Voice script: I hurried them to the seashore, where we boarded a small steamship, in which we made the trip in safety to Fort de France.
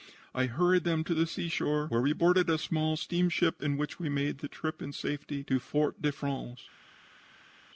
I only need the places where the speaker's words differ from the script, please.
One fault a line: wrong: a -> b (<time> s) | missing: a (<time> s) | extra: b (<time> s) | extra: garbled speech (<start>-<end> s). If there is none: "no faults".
no faults